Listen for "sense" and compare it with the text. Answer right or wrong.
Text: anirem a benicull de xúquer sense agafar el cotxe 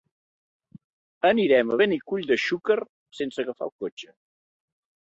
right